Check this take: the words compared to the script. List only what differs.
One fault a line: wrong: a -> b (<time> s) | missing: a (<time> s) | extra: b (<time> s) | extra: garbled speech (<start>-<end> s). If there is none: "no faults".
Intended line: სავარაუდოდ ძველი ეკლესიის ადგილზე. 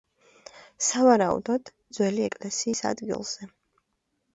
no faults